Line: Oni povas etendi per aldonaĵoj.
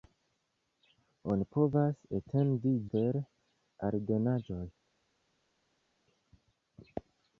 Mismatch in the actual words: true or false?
false